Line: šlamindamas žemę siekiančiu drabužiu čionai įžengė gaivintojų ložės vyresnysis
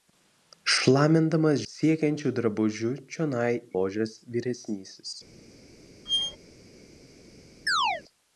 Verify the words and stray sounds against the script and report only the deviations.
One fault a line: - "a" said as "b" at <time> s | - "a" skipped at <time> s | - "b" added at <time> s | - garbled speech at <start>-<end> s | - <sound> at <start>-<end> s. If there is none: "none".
- "žemę" skipped at 1.6 s
- "įžengė gaivintojų" skipped at 3.5 s
- squeak at 6.1-6.4 s
- chirp at 7.7-8.0 s